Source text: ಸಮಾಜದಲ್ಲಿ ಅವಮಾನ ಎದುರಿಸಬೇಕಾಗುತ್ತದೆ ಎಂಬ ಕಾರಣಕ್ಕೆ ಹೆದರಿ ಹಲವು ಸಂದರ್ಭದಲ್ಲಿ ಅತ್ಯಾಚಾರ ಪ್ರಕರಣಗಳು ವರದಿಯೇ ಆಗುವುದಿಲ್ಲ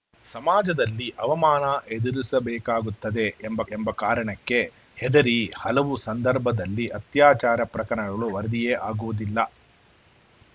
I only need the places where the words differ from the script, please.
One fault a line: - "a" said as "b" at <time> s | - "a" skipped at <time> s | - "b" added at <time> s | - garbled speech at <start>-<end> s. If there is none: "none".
- "ಎಂಬ" added at 3.7 s